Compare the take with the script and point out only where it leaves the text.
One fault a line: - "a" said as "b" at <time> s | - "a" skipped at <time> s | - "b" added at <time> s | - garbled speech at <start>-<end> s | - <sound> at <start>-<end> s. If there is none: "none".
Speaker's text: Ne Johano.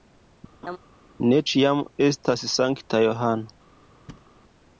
- laugh at 0.6-0.8 s
- "ĉiam estas sankta" added at 1.5 s
- thud at 4.1-4.3 s